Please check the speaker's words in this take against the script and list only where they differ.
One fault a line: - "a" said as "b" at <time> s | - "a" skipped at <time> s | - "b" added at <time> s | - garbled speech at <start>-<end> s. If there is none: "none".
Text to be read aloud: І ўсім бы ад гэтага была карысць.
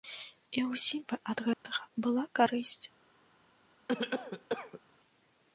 none